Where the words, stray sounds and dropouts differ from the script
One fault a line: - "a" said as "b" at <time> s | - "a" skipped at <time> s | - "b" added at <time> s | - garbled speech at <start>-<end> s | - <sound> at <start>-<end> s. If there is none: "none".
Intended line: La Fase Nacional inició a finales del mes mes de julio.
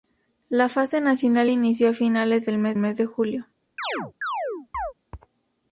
- chirp at 3.8-4.9 s